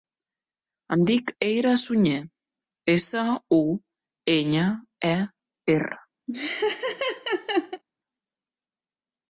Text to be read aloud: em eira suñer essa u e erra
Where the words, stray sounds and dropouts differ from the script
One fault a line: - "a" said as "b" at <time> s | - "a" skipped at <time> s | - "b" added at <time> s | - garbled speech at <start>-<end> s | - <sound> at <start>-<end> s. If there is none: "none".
- "dic" added at 1.1 s
- "enya" added at 4.4 s
- laugh at 6.3-7.8 s